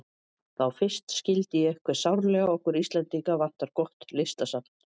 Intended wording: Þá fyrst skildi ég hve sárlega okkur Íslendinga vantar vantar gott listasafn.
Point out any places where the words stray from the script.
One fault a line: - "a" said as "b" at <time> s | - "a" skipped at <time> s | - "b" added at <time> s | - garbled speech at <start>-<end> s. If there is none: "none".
- "vantar" skipped at 3.7 s